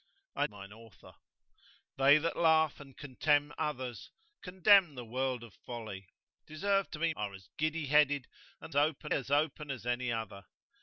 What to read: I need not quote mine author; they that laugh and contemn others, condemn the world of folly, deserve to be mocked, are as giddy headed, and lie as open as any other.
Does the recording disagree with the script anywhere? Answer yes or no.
yes